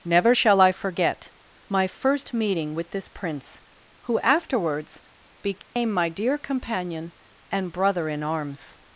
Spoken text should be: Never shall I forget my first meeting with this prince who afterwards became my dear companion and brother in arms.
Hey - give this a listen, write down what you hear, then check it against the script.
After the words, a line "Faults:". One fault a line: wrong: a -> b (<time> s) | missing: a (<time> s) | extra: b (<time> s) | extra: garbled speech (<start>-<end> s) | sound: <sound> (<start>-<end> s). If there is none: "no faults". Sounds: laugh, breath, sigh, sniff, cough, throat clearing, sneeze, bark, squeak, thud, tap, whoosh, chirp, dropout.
Never shall I forget my first meeting with this prince who afterwards became my dear companion and brother in arms.
Faults:
sound: dropout (5.6-5.8 s)